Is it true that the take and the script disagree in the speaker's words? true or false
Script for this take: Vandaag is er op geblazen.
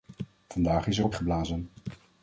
false